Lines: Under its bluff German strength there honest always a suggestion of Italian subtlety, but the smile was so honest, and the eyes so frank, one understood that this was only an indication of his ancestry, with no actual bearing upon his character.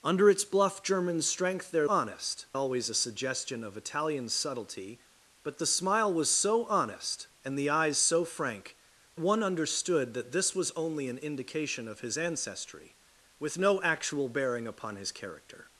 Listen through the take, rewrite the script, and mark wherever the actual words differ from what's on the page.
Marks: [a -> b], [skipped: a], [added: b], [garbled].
Under its bluff German strength there honest always a suggestion of Italian subtlety, but the smile was so honest, and the eyes so frank, one understood that this was only an indication of his ancestry, with no actual bearing upon his character.